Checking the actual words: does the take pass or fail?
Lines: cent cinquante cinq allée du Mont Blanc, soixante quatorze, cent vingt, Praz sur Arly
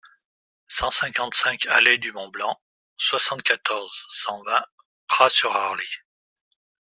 pass